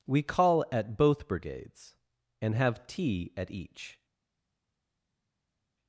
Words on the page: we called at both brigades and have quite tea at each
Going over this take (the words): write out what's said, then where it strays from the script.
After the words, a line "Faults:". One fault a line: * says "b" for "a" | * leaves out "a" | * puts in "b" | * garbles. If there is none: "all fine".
we call at both brigades and have tea at each
Faults:
* says "call" for "called"
* leaves out "quite"